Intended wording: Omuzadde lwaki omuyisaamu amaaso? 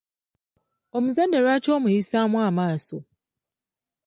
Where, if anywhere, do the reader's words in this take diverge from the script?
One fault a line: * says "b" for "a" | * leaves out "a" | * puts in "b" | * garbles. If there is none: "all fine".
all fine